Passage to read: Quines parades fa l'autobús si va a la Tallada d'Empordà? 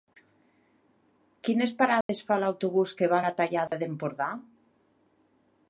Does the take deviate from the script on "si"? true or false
true